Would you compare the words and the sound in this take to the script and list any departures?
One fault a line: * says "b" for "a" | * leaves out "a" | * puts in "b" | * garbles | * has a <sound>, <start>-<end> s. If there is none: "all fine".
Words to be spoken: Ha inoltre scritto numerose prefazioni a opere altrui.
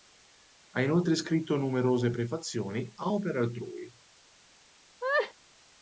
* has a laugh, 5.0-5.3 s